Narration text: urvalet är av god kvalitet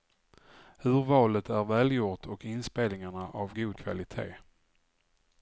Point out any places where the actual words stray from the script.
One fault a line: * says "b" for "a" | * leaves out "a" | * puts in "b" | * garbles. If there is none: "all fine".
* puts in "välgjort och inspelningarna"